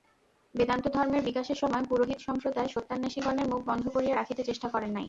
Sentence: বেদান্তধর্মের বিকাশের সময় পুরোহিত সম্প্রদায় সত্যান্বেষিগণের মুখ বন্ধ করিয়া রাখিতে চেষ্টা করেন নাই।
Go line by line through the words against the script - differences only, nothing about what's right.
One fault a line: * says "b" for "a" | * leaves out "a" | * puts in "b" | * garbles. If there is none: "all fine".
all fine